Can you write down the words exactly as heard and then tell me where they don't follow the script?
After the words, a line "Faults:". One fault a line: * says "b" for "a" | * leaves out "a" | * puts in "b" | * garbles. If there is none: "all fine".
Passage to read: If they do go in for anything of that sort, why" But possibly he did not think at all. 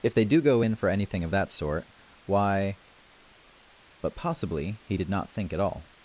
If they do go in for anything of that sort, why" But possibly he did not think at all.
Faults:
all fine